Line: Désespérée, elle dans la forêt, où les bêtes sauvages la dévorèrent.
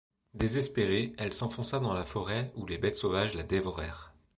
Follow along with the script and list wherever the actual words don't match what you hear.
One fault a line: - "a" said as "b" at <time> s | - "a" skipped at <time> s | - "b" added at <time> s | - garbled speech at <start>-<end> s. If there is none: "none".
- "s'enfonça" added at 1.3 s